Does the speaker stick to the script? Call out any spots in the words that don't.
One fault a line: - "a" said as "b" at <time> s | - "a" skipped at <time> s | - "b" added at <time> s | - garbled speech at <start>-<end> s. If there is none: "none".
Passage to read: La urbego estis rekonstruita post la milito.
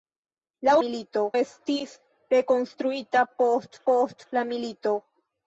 - "urbego" said as "milito" at 0.9 s
- "post" added at 3.9 s